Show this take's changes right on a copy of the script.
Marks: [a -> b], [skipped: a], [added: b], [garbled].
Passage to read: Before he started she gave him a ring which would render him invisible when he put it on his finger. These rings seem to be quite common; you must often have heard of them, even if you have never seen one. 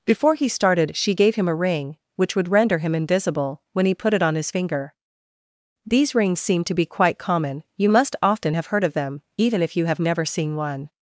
Before he started she gave him a ring which would render him invisible when he put it on his finger. These rings seem to be quite common; you must often have heard of them, even if you have never seen one.